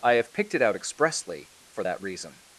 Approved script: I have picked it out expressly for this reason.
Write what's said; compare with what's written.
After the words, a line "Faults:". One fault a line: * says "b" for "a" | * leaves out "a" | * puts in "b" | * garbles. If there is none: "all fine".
I have picked it out expressly for that reason.
Faults:
* says "that" for "this"